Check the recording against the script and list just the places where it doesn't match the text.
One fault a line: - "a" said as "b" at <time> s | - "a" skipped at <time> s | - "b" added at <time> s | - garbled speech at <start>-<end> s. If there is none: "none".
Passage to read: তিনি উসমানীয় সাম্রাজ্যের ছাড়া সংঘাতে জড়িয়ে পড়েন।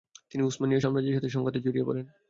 - "ছাড়া" said as "সাথে" at 1.2 s